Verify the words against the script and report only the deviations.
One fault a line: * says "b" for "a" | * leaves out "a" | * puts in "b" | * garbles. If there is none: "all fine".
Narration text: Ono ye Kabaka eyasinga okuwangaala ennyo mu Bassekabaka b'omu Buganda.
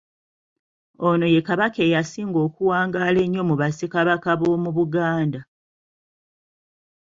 all fine